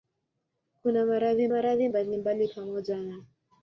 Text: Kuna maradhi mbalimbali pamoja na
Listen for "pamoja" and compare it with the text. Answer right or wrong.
right